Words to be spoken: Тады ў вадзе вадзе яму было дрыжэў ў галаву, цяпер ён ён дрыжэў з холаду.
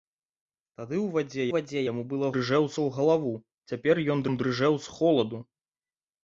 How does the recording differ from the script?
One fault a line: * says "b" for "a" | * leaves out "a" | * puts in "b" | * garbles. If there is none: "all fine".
all fine